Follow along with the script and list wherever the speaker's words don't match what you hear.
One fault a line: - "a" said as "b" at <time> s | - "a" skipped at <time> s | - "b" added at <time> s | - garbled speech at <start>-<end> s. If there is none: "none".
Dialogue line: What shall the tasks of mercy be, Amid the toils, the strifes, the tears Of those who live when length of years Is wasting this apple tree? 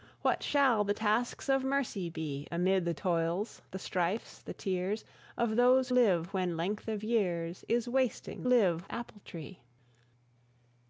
- "who" skipped at 5.9 s
- "this" said as "live" at 8.4 s